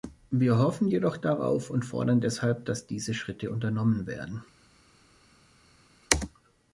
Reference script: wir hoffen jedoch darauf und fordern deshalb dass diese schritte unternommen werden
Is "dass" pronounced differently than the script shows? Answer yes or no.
no